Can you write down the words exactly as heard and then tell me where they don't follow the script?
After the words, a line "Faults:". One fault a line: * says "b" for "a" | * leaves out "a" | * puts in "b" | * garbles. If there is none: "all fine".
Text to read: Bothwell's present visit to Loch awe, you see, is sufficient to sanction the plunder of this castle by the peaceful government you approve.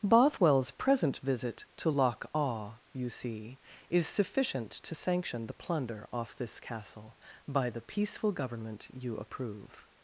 Bothwell's present visit to Loch awe, you see, is sufficient to sanction the plunder off this castle by the peaceful government you approve.
Faults:
* says "off" for "of"